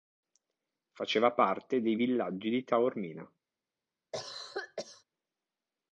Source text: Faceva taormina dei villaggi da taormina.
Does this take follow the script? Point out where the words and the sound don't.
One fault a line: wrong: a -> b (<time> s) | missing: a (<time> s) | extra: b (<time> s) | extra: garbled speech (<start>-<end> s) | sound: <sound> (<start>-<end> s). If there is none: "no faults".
wrong: taormina -> parte (1.3 s)
wrong: da -> di (2.5 s)
sound: cough (4.1-5.0 s)